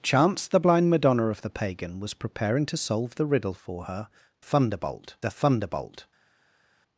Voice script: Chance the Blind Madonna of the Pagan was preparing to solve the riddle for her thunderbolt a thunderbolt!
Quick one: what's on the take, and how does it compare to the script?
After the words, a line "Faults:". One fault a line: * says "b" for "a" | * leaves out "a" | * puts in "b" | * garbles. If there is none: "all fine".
Chance the Blind Madonna of the Pagan was preparing to solve the riddle for her thunderbolt a thunderbolt!
Faults:
all fine